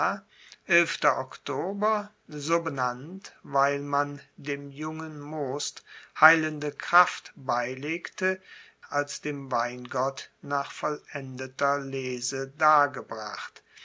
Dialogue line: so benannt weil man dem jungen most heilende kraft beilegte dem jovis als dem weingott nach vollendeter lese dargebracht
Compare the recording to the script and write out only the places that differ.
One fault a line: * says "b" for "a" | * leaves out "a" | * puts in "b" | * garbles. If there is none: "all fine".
* leaves out "dem jovis"